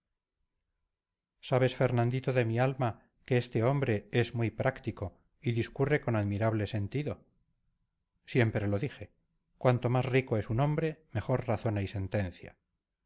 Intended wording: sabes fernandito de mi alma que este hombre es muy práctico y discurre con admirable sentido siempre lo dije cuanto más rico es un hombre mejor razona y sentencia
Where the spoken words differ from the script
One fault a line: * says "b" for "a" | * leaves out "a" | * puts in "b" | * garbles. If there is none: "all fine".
all fine